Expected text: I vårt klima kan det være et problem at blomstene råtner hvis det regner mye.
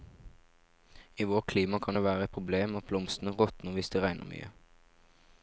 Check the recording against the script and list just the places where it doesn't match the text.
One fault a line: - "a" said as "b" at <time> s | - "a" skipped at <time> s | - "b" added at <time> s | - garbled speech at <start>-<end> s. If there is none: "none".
none